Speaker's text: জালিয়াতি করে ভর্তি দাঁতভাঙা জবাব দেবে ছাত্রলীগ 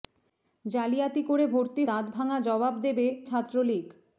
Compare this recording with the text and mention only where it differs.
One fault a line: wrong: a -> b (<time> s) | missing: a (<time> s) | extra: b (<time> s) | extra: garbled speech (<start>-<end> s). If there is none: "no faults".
no faults